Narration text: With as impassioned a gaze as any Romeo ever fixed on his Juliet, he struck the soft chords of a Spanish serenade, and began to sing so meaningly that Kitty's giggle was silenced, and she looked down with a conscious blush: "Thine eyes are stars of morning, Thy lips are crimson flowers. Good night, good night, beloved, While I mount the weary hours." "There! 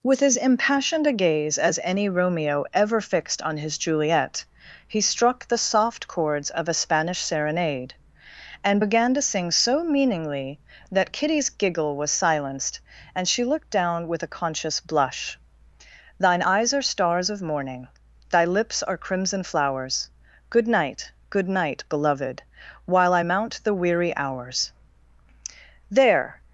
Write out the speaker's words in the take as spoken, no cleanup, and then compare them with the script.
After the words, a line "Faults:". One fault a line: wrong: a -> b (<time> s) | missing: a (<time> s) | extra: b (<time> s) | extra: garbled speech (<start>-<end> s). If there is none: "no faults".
With as impassioned a gaze as any Romeo ever fixed on his Juliet, he struck the soft chords of a Spanish serenade, and began to sing so meaningly that Kitty's giggle was silenced, and she looked down with a conscious blush: "Thine eyes are stars of morning, Thy lips are crimson flowers. Good night, good night, beloved, While I mount the weary hours." "There!
Faults:
no faults